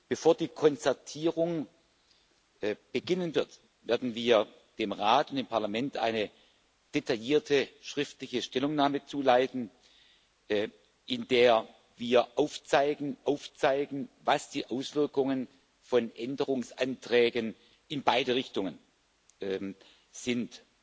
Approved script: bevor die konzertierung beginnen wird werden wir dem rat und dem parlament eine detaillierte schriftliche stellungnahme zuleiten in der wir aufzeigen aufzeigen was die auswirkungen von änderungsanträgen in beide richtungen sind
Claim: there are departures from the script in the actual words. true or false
false